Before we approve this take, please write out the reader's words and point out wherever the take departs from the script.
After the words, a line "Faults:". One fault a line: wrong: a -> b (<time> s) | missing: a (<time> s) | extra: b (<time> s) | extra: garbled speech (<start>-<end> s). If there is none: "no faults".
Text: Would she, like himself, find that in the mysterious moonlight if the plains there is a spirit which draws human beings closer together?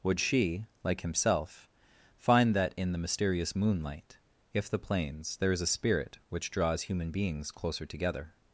Would she, like himself, find that in the mysterious moonlight if the plains there is a spirit which draws human beings closer together?
Faults:
no faults